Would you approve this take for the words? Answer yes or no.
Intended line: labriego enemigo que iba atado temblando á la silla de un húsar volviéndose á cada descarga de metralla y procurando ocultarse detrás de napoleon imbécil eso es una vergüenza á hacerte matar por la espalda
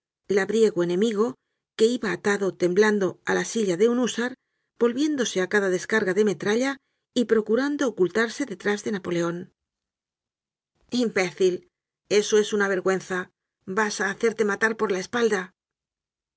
no